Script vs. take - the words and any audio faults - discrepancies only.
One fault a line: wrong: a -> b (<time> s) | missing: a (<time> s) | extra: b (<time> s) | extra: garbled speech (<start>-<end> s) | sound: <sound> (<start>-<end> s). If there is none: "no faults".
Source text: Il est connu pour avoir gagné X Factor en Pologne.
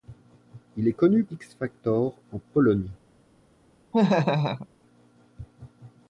missing: pour avoir gagné (1.3 s)
sound: laugh (3.9-4.7 s)